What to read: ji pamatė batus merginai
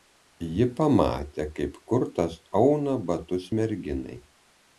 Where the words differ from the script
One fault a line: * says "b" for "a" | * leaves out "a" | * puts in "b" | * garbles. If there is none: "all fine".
* puts in "kaip kurtas auna"